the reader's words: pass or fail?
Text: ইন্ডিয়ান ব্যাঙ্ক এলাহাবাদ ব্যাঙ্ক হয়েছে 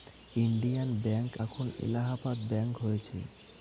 fail